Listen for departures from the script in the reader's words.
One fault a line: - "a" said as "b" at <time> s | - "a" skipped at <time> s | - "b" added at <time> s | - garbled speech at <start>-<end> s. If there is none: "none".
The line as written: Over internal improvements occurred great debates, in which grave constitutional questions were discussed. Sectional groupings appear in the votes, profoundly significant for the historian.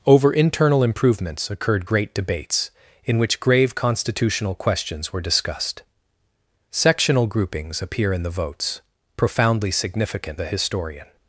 - "for" skipped at 10.4 s